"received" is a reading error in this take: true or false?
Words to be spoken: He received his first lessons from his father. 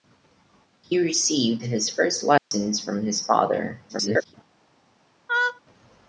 false